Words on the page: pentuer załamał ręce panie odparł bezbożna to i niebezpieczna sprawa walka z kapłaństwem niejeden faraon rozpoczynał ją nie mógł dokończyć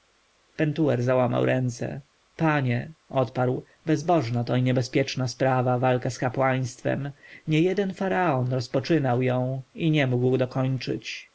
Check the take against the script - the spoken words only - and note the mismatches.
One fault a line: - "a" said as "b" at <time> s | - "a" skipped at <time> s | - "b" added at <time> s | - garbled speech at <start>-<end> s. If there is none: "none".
- "i" added at 9.8 s